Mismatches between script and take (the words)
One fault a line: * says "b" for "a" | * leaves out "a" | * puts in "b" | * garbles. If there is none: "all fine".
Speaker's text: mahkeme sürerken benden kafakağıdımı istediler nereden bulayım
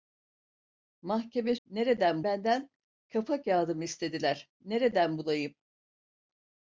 * says "nereden" for "sürerken"